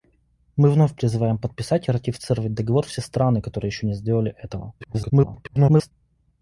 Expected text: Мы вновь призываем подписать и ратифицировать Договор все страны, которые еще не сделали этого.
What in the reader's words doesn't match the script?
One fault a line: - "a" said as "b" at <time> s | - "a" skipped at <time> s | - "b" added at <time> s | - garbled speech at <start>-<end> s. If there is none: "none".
- garbled speech at 4.8-5.9 s